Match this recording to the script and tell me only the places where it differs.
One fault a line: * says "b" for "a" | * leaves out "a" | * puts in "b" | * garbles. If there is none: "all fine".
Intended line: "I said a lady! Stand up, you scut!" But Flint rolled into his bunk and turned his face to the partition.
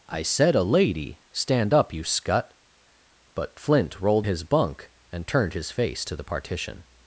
* leaves out "into"